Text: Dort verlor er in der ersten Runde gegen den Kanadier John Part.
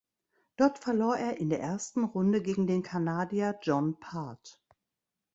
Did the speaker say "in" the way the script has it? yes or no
yes